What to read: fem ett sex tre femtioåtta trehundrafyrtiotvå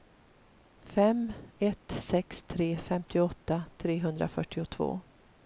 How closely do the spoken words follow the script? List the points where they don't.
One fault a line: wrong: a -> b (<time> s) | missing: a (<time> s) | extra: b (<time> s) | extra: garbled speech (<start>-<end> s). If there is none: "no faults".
no faults